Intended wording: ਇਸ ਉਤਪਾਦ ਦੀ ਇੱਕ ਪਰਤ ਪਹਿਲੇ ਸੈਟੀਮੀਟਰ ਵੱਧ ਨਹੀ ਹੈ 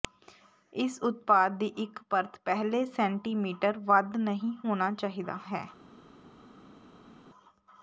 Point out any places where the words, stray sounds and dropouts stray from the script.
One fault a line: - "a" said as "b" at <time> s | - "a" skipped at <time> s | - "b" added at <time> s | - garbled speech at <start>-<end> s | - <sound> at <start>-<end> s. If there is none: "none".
- "ਹੋਣਾ ਚਾਹੀਦਾ" added at 4.6 s